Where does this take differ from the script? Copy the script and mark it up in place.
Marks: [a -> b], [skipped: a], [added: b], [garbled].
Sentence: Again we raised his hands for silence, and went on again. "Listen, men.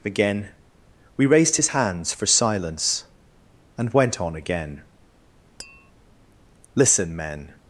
Again we raised his hands for silence, and went on again. "Listen, men.